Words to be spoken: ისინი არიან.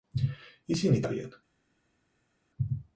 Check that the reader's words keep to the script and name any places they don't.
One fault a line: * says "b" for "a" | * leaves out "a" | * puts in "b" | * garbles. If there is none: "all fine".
all fine